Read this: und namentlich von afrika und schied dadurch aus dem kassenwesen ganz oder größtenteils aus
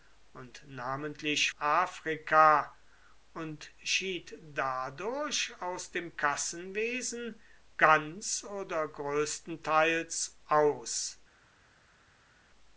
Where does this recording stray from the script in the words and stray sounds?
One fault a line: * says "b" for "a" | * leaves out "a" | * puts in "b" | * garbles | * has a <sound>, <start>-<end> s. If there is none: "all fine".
* leaves out "von"